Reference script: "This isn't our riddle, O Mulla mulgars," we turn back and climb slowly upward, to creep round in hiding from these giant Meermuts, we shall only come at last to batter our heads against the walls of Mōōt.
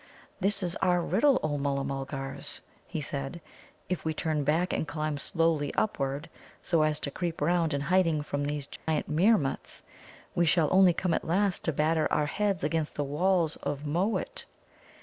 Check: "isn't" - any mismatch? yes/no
yes